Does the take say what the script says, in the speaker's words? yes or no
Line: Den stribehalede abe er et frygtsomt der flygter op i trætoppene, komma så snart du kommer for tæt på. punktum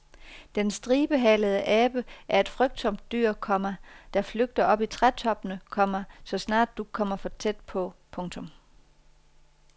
no